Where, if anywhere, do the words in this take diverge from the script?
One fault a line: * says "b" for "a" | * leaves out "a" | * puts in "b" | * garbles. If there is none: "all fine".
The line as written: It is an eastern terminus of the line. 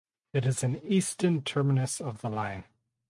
all fine